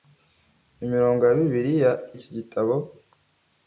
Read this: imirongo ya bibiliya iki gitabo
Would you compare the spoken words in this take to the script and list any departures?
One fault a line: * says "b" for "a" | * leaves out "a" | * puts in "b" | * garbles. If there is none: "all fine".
all fine